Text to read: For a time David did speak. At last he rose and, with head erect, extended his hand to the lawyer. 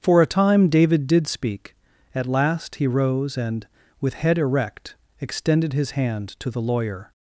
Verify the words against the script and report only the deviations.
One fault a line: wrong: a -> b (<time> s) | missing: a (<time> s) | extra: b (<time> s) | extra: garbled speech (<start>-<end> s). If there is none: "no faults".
no faults